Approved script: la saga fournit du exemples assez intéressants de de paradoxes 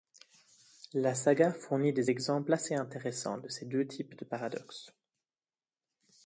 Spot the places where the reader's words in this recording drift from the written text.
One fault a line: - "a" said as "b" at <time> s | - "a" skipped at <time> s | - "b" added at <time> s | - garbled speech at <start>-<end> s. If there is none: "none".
- "du" said as "des" at 1.9 s
- "ces deux types" added at 3.5 s